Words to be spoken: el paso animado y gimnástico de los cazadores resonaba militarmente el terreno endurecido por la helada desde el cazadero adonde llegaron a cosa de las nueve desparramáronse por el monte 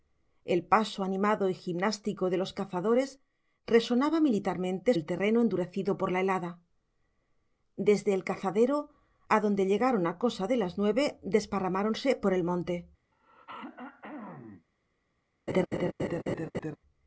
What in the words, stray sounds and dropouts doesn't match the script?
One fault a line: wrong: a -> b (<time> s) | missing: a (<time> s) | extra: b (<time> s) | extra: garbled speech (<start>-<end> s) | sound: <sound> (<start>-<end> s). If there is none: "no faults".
sound: throat clearing (13.1-14.7 s)
sound: laugh (15.5-16.8 s)